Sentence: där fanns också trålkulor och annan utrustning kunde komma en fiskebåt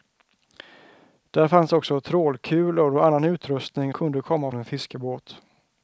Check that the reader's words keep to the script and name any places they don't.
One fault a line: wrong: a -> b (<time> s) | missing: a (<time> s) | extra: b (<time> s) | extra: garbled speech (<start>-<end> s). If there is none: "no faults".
no faults